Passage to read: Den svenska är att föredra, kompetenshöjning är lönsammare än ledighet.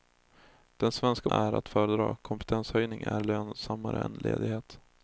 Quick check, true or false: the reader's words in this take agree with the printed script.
true